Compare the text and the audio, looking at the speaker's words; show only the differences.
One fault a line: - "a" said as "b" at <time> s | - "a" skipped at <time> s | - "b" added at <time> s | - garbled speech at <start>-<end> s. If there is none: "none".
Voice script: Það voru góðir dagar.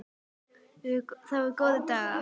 none